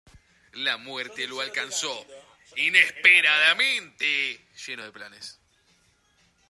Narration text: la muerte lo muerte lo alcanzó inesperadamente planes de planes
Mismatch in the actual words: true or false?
true